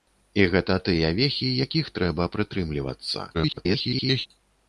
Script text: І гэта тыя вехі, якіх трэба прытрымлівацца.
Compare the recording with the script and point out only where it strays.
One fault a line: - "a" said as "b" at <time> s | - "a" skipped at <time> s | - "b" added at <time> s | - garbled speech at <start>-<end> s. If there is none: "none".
- garbled speech at 3.3-4.3 s